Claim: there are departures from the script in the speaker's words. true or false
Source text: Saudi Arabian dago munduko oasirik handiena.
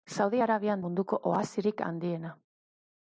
true